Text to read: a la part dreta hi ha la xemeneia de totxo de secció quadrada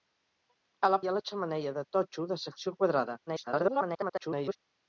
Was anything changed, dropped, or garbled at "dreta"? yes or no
yes